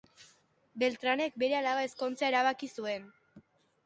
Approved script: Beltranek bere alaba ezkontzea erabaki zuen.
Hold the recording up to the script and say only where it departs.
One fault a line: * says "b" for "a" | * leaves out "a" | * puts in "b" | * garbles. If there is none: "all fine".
all fine